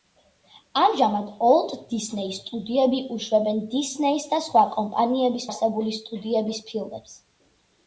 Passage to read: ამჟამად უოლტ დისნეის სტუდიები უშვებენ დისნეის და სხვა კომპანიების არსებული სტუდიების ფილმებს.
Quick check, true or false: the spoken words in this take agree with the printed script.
true